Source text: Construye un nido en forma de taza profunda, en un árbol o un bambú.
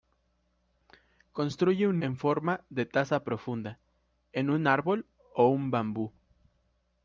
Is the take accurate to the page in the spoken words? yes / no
no